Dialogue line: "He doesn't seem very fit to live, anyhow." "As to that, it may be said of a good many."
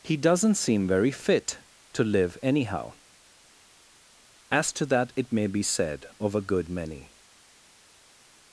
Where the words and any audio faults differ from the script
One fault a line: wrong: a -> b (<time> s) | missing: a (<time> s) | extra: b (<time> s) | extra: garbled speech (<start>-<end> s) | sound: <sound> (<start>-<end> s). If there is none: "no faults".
no faults